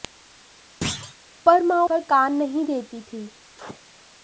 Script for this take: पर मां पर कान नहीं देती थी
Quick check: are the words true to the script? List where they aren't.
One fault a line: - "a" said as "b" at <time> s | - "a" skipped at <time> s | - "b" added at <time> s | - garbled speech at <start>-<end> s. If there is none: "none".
none